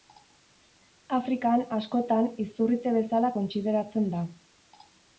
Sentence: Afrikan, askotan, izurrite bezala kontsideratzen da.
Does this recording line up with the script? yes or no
yes